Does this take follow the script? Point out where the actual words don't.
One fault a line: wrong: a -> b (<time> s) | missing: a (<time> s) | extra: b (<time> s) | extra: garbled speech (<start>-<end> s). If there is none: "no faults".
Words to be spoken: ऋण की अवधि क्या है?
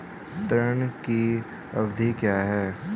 no faults